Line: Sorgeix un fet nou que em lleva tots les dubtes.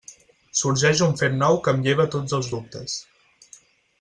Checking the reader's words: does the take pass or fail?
fail